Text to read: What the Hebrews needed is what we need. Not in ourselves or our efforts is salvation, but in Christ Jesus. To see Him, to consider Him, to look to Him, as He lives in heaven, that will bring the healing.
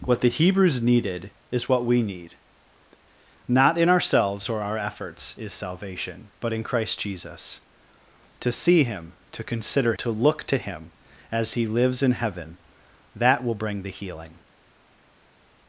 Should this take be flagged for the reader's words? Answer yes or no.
yes